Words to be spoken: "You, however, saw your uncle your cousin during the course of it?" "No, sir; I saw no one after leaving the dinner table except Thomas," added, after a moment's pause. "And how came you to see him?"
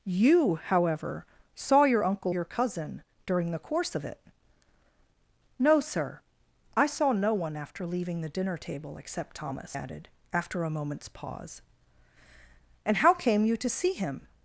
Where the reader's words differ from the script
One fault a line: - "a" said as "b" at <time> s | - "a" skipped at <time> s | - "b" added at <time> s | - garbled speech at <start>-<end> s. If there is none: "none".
none